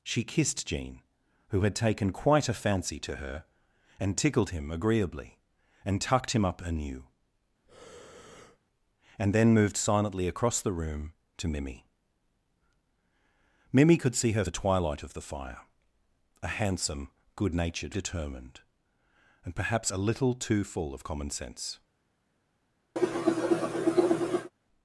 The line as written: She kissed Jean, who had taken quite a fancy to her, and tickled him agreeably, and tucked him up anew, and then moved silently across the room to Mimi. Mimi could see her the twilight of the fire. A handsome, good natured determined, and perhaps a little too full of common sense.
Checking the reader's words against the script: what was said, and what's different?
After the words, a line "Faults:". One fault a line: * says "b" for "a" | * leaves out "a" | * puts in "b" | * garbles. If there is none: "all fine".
She kissed Jean, who had taken quite a fancy to her, and tickled him agreeably, and tucked him up anew, and then moved silently across the room to Mimi. Mimi could see her the twilight of the fire. A handsome, good natured determined, and perhaps a little too full of common sense.
Faults:
all fine